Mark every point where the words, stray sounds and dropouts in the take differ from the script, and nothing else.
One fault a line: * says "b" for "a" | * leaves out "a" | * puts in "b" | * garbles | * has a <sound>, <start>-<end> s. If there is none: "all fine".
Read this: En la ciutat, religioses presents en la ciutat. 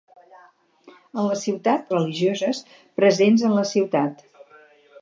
all fine